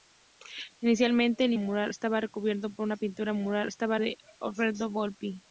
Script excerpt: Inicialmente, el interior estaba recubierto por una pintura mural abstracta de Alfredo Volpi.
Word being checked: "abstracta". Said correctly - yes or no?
no